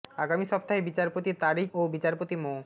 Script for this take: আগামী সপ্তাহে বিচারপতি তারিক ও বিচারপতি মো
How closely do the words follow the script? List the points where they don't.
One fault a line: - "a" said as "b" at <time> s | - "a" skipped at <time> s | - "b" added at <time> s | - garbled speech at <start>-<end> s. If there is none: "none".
none